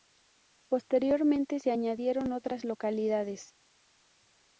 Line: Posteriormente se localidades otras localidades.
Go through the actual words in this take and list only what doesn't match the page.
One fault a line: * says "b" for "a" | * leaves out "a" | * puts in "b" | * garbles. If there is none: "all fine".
* says "añadieron" for "localidades"